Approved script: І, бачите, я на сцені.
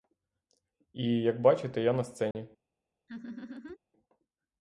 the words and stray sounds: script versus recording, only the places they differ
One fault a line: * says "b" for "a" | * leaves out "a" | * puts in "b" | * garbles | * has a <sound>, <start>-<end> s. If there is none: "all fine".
* puts in "як"
* has a dropout, 2.3-2.4 s
* has a laugh, 3.1-3.8 s